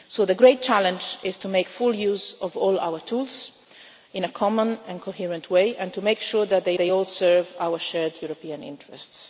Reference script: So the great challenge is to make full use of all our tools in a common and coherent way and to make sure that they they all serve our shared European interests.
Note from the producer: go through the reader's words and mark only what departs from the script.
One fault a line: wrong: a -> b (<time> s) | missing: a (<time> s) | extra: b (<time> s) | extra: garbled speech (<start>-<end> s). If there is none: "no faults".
no faults